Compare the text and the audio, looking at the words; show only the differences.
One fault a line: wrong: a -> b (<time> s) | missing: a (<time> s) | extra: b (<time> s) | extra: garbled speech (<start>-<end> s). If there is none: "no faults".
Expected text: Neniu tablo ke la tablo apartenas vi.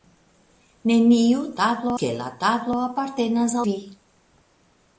no faults